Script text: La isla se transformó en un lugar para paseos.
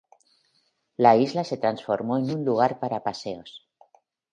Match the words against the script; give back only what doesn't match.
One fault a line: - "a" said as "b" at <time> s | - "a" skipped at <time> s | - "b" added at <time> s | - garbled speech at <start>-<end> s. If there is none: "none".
none